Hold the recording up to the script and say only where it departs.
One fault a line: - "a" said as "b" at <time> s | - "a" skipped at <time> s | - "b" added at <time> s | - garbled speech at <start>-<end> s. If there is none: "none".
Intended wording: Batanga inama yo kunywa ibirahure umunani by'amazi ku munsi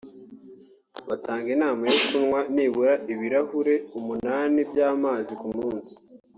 - "nibura" added at 2.5 s